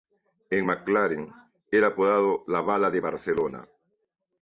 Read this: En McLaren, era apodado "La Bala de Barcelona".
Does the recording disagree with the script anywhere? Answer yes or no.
no